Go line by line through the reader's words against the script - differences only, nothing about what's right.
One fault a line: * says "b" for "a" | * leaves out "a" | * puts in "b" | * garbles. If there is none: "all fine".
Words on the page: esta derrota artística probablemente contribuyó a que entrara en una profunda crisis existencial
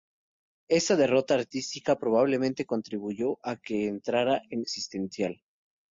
* leaves out "una profunda crisis"